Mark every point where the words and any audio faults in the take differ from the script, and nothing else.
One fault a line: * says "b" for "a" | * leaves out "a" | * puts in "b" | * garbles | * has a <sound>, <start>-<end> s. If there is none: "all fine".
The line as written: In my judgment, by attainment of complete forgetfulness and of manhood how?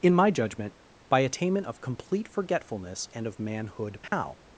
* has a dropout, 4.1-4.1 s